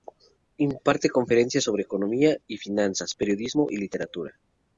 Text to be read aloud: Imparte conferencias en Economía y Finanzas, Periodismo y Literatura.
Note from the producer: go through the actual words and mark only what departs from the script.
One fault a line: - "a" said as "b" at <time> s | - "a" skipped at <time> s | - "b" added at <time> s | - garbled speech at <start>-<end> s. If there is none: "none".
- "en" said as "sobre" at 1.6 s